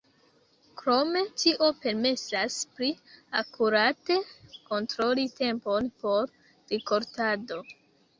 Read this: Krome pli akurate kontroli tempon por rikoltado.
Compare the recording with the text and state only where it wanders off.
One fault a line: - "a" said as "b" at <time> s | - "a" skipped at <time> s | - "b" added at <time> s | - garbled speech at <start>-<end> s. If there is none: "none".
- "tio permesas" added at 1.4 s